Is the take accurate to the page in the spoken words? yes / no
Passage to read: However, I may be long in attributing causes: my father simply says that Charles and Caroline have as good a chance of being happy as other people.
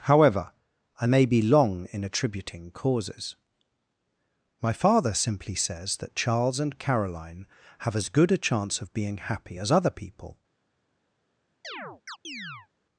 yes